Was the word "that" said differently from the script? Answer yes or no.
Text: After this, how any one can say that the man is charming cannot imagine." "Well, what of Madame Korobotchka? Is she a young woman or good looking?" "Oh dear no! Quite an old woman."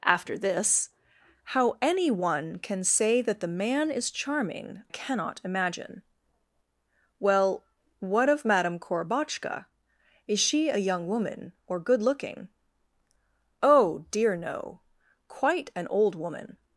no